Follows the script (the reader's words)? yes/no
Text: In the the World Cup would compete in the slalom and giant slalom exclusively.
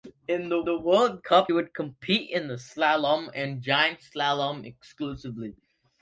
yes